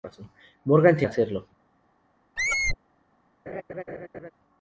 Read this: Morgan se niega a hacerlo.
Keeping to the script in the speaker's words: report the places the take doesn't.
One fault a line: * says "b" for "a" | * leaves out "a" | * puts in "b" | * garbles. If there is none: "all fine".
* leaves out "niega"